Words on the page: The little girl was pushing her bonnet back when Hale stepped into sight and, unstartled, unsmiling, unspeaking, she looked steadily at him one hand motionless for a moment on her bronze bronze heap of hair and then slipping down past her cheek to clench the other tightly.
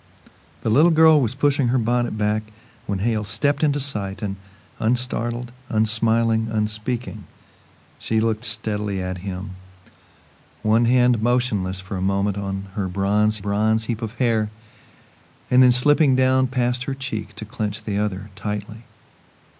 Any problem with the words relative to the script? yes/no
no